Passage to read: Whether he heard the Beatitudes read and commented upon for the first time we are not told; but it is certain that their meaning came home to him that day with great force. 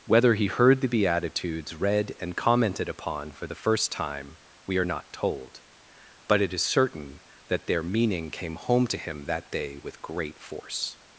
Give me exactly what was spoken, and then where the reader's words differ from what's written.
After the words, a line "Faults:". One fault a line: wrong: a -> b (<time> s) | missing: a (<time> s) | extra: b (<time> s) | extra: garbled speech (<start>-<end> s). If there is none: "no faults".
Whether he heard the Beatitudes read and commented upon for the first time we are not told; but it is certain that their meaning came home to him that day with great force.
Faults:
no faults